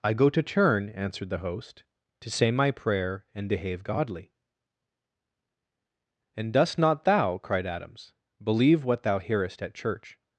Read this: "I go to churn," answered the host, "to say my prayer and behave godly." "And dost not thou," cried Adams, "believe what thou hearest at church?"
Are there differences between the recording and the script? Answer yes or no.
no